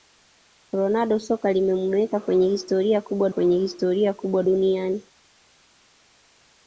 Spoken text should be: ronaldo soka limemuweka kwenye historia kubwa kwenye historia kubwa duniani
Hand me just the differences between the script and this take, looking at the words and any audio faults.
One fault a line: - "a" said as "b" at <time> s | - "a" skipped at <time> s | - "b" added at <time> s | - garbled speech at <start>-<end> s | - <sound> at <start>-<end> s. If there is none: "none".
none